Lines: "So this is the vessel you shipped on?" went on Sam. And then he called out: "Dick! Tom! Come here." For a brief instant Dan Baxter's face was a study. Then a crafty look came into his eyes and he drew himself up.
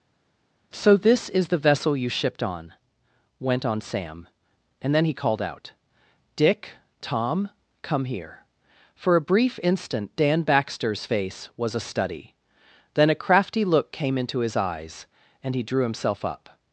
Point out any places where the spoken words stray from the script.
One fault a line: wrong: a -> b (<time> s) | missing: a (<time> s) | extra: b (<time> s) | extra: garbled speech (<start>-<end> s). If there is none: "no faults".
no faults